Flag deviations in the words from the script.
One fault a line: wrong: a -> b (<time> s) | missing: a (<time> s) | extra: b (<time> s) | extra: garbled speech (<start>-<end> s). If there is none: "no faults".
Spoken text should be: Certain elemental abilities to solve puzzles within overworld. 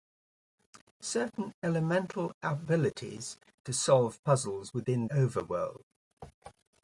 no faults